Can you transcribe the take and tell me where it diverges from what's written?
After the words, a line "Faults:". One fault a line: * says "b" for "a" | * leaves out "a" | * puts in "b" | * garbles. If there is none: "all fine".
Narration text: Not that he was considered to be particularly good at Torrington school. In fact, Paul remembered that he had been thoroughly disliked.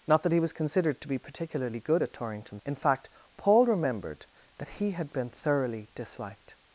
Not that he was considered to be particularly good at Torrington. In fact, Paul remembered that he had been thoroughly disliked.
Faults:
* leaves out "school"